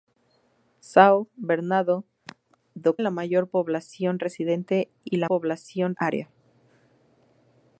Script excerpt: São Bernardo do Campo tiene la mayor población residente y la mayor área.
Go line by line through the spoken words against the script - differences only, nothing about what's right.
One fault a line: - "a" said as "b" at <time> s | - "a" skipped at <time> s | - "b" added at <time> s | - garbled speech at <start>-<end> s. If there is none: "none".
- "Campo tiene" skipped at 3.0 s
- "mayor" said as "población" at 5.2 s